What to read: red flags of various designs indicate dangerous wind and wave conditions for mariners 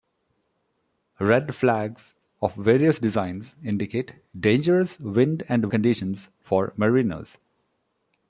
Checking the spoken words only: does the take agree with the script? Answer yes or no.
no